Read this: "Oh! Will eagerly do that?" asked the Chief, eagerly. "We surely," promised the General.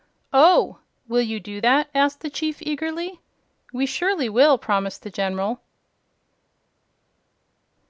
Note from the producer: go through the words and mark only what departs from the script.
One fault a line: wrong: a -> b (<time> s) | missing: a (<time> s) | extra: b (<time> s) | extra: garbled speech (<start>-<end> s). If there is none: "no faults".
wrong: eagerly -> you (1.2 s)
extra: will (4.3 s)